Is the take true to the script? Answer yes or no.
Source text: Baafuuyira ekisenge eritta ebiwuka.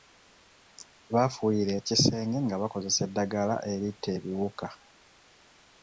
no